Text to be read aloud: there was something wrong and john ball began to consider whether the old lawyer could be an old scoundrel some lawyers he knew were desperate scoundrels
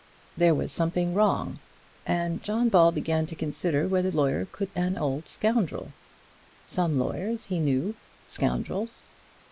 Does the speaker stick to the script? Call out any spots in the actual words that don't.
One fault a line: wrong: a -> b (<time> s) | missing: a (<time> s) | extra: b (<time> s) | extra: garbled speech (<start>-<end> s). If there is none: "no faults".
missing: the old (4.1 s)
missing: be (4.8 s)
missing: were desperate (8.0 s)